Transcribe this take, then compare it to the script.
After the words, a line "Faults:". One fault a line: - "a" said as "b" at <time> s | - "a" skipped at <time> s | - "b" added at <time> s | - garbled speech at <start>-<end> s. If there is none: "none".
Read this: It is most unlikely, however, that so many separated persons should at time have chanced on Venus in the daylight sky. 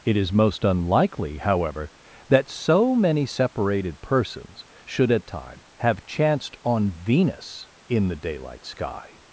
It is most unlikely, however, that so many separated persons should at time have chanced on Venus in the daylight sky.
Faults:
none